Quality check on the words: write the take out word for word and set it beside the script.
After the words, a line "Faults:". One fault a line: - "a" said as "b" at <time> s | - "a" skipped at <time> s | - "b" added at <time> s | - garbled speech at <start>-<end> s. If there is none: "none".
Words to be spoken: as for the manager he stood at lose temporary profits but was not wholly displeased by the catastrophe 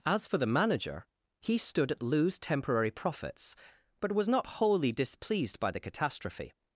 as for the manager he stood at lose temporary profits but was not wholly displeased by the catastrophe
Faults:
none